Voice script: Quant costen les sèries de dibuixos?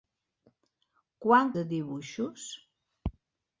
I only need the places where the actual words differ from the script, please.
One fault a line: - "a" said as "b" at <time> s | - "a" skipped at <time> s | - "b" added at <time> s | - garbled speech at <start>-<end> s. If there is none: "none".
- "costen les sèries" skipped at 1.5 s